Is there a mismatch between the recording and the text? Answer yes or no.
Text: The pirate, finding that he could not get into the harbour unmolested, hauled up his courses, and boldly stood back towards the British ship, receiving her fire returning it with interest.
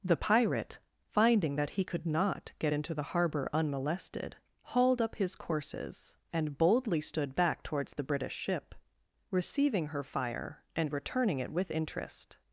yes